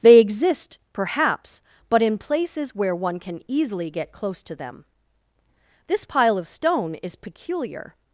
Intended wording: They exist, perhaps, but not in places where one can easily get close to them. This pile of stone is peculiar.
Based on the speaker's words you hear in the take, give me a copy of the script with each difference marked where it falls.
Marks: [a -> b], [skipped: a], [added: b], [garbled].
They exist, perhaps, but [skipped: not] in places where one can easily get close to them. This pile of stone is peculiar.